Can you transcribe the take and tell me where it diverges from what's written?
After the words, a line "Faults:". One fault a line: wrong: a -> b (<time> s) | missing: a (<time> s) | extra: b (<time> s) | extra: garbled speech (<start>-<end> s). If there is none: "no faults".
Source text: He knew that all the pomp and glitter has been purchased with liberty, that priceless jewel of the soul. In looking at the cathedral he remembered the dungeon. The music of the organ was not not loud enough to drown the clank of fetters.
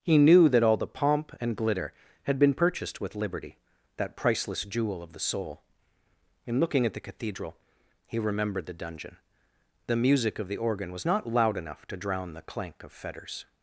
He knew that all the pomp and glitter had been purchased with liberty, that priceless jewel of the soul. In looking at the cathedral he remembered the dungeon. The music of the organ was not loud enough to drown the clank of fetters.
Faults:
wrong: has -> had (2.2 s)
missing: not (11.3 s)